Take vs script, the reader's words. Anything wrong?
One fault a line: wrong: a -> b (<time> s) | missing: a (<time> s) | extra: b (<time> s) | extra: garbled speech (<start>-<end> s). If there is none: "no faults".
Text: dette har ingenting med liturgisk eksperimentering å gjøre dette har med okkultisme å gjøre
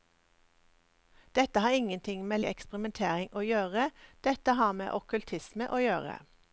missing: liturgisk (2.4 s)